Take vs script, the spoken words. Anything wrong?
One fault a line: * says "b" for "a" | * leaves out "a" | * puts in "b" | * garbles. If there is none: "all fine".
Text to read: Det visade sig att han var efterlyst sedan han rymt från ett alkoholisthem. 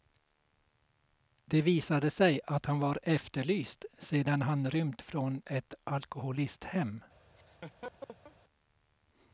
all fine